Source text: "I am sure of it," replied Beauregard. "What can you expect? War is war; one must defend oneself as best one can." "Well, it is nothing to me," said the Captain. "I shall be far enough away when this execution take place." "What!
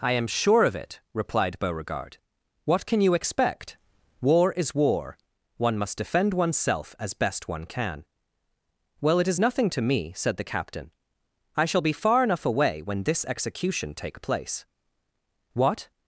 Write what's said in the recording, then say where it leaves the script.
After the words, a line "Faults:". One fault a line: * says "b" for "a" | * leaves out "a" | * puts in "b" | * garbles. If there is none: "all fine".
"I am sure of it," replied Beauregard. "What can you expect? War is war; one must defend oneself as best one can." "Well, it is nothing to me," said the Captain. "I shall be far enough away when this execution take place." "What!
Faults:
all fine